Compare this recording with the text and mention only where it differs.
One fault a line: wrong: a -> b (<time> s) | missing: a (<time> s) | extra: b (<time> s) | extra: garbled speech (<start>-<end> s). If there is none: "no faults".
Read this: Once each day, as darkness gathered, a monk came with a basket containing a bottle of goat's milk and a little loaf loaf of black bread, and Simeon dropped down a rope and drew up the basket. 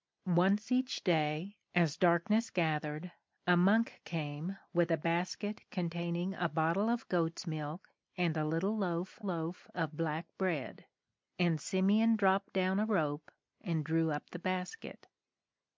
no faults